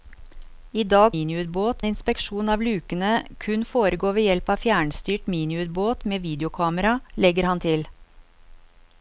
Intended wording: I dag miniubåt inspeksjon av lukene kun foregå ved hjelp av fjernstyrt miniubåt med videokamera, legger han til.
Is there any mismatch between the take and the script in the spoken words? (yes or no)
no